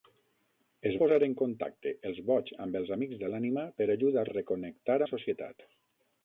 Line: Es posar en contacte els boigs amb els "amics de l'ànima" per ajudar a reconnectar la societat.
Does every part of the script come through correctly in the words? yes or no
yes